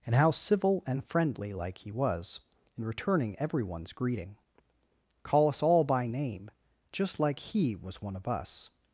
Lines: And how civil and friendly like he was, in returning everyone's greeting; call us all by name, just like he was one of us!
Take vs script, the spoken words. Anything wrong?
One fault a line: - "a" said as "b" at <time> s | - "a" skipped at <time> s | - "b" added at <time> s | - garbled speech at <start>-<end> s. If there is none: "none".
none